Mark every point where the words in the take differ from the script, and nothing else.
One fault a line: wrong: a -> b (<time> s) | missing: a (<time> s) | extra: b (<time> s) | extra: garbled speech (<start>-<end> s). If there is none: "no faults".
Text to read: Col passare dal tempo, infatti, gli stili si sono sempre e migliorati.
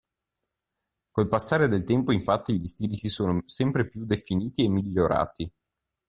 wrong: dal -> del (1.7 s)
extra: più definiti (3.9 s)